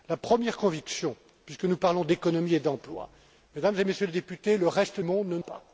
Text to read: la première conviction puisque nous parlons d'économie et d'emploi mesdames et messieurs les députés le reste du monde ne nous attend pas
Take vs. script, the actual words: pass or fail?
fail